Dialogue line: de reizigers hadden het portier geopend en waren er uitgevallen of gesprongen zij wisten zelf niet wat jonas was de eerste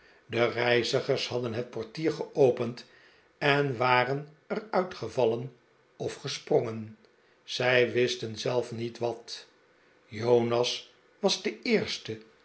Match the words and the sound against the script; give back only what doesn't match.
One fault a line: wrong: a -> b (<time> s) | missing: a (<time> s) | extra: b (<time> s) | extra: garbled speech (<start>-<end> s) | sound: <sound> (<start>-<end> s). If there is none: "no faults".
no faults